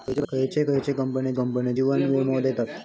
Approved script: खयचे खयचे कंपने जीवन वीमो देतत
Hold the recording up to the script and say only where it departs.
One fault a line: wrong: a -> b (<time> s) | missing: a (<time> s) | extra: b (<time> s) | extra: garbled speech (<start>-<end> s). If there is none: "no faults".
extra: कंपने (1.3 s)